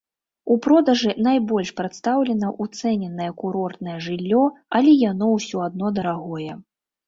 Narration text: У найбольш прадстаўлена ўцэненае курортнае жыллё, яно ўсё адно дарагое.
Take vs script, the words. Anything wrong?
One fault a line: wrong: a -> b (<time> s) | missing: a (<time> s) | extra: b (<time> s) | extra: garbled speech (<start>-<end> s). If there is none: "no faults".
extra: продажы (0.7 s)
extra: але (4.8 s)